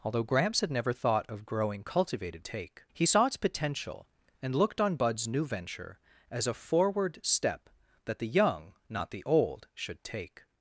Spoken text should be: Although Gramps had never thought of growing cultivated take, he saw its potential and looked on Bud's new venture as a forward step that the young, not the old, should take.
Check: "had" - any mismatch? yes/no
no